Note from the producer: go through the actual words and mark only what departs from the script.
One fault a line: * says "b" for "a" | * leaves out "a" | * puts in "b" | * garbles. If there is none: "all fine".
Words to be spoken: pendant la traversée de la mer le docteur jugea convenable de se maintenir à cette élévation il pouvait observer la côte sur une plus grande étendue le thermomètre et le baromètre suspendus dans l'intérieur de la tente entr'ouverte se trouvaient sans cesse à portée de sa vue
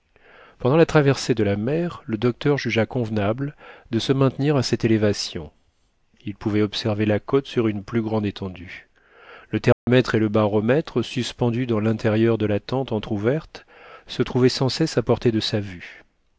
all fine